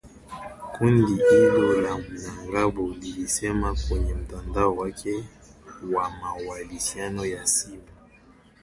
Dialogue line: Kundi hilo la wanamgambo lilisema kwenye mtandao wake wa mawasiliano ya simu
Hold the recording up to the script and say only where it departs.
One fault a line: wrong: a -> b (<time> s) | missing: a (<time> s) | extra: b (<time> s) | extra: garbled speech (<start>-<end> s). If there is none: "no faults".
no faults